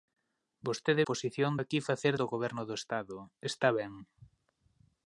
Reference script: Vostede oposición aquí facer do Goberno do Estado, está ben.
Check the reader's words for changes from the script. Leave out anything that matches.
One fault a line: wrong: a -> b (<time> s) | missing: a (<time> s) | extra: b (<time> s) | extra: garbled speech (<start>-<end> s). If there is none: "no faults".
no faults